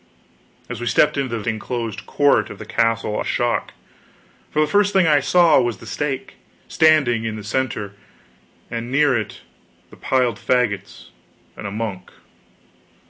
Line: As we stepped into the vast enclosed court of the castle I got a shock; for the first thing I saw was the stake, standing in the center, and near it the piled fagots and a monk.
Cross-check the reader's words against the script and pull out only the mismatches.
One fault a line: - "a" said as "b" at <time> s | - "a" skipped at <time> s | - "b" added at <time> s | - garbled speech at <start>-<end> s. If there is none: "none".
- "vast" skipped at 1.4 s
- "I got" skipped at 3.2 s